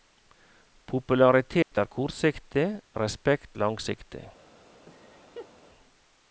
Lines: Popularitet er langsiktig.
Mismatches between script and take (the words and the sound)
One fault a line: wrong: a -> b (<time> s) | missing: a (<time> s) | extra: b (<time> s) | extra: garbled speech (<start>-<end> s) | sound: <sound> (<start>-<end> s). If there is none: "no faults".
sound: dropout (1.6-1.7 s)
extra: kortsiktig respekt (2.0 s)
sound: laugh (4.9-5.5 s)